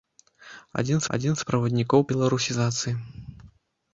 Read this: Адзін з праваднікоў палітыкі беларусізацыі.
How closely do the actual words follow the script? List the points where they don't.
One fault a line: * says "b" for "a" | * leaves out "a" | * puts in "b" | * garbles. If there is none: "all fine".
* puts in "адзін"
* leaves out "палітыкі"